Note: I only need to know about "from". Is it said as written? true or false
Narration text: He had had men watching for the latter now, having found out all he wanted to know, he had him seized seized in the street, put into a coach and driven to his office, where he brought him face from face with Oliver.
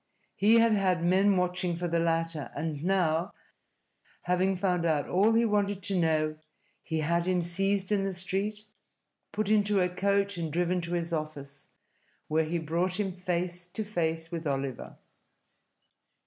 false